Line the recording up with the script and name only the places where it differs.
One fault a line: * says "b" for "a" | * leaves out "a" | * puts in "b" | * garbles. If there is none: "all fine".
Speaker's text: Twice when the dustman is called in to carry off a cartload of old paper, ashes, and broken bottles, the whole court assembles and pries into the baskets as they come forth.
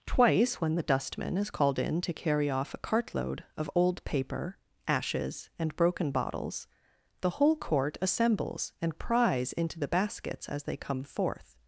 all fine